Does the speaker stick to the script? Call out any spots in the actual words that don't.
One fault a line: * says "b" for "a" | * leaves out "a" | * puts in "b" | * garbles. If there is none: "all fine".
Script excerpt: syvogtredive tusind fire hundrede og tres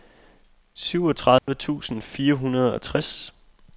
all fine